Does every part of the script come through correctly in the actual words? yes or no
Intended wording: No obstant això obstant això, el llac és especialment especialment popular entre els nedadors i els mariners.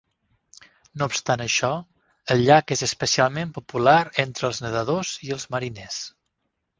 no